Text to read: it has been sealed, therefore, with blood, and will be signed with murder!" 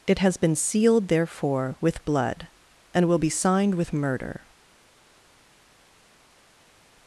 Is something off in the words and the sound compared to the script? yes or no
no